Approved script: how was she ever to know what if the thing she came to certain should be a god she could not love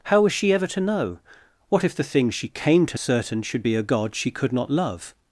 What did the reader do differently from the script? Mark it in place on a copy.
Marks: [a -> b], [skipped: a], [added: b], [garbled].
how was she ever to know what if the thing she came to certain should be a god she could not love